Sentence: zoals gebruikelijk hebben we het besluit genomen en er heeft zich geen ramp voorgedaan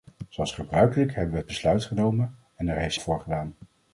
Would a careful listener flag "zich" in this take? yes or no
yes